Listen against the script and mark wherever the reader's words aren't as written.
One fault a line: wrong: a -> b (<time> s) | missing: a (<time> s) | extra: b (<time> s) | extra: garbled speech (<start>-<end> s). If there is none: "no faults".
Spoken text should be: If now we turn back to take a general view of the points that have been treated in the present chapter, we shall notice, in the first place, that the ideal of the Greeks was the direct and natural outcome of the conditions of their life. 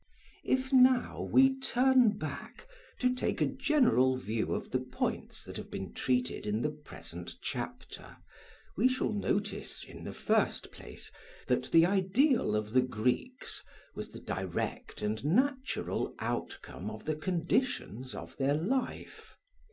no faults